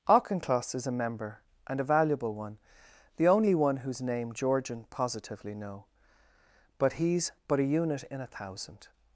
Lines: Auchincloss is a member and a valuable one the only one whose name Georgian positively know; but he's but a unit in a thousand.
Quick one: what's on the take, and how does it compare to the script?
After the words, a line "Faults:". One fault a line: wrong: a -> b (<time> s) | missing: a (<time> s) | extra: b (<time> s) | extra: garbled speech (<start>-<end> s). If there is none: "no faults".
Auchincloss is a member and a valuable one the only one whose name Georgian positively know; but he's but a unit in a thousand.
Faults:
no faults